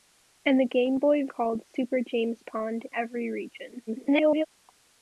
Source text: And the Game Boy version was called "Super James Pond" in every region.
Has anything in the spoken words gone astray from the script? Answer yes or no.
yes